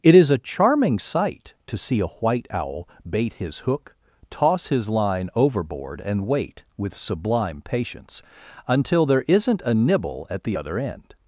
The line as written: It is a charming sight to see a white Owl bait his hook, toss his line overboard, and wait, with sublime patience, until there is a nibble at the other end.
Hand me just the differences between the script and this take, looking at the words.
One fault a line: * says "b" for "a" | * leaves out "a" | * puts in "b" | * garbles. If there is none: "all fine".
* says "isn't" for "is"